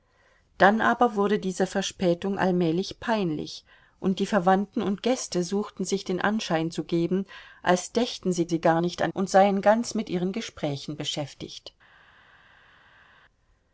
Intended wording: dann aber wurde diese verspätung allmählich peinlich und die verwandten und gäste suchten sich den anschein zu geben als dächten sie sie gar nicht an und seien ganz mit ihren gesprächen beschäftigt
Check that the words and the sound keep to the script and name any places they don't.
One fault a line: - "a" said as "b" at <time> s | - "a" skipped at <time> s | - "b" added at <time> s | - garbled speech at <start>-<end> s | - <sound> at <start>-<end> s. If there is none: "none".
none